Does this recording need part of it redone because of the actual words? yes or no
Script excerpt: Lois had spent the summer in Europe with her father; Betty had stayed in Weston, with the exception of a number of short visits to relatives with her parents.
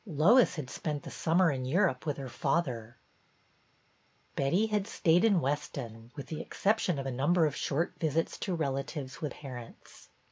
yes